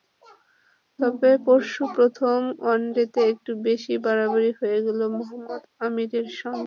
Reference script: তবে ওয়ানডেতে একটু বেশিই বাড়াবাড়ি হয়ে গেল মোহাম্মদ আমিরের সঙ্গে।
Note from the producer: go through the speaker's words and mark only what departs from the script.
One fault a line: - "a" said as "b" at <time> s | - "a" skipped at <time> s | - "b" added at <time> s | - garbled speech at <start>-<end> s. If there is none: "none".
- "পরশু প্রথম" added at 1.4 s